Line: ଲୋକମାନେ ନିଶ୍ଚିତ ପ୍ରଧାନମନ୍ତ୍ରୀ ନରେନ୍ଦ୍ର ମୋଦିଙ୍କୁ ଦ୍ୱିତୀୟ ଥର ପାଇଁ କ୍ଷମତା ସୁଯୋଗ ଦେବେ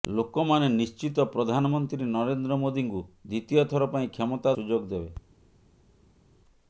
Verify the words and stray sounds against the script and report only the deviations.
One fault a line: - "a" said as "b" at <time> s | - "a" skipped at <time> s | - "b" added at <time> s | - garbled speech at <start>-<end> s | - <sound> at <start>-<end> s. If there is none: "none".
none